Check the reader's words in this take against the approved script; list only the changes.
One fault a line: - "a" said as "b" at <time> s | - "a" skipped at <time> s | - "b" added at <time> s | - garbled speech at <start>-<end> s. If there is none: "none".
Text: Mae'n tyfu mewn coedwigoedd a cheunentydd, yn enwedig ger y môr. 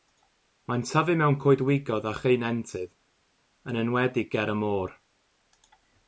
none